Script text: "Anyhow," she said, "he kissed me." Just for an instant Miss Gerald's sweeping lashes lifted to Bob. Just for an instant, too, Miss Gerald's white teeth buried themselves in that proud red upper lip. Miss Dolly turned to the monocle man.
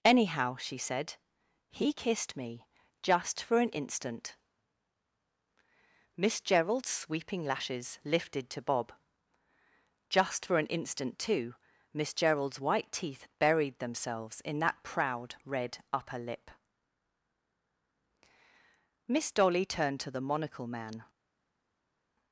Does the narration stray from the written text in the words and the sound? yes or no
no